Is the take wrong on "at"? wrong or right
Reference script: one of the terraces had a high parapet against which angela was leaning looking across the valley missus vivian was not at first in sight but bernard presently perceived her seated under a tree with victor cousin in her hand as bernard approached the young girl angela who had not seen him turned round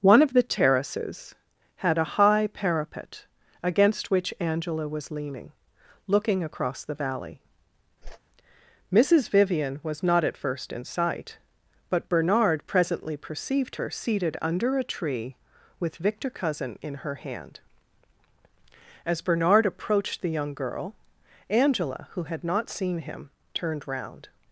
right